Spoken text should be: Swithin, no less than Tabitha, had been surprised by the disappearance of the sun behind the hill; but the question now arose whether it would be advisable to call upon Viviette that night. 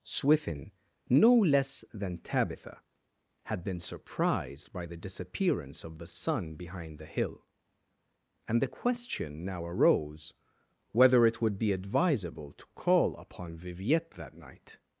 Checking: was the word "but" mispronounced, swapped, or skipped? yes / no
yes